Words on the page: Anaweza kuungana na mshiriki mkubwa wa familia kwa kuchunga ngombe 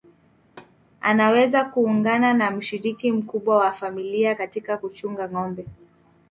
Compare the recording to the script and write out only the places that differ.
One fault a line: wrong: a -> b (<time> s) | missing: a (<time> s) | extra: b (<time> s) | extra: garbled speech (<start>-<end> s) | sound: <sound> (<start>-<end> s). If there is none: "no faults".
sound: thud (0.4-0.8 s)
wrong: kwa -> katika (4.3 s)